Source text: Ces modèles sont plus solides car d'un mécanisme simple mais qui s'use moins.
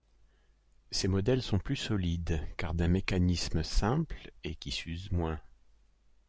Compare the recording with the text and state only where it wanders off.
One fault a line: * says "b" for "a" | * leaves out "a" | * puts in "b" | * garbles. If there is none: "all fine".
* says "et" for "mais"